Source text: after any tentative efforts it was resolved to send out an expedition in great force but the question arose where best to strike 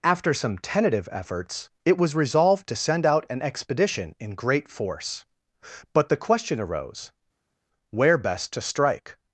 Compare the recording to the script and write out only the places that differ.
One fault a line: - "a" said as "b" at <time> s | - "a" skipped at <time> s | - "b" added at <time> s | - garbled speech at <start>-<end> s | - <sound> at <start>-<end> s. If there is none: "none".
- "any" said as "some" at 0.3 s